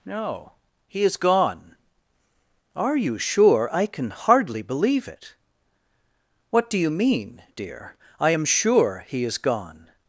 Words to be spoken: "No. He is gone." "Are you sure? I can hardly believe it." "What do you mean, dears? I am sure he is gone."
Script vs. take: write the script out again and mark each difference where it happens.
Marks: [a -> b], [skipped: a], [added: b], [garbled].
"No. He is gone." "Are you sure? I can hardly believe it." "What do you mean, [dears? -> dear] I am sure he is gone."